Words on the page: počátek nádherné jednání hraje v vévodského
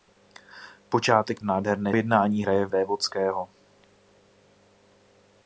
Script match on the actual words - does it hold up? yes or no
yes